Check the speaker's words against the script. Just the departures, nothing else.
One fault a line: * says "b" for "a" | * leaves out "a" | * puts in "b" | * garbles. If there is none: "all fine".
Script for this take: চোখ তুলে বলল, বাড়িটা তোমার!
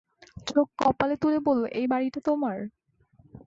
* puts in "কপালে"
* puts in "এই"